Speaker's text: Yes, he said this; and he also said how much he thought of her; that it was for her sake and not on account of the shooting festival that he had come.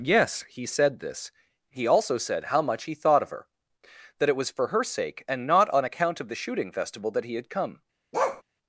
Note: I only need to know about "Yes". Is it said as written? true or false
true